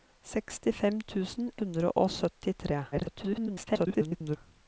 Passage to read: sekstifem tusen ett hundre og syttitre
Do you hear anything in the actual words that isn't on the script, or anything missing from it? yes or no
yes